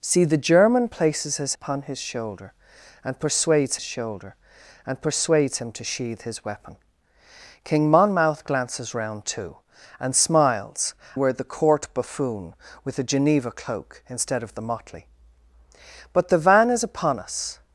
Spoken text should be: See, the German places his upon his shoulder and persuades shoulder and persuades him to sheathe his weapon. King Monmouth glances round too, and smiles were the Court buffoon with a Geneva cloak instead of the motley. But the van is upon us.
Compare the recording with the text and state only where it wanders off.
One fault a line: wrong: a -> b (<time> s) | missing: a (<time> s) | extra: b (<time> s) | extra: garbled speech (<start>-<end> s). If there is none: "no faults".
no faults